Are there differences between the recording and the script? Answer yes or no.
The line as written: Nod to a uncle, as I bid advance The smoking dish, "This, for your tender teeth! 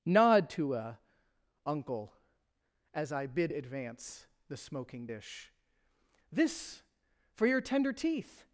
no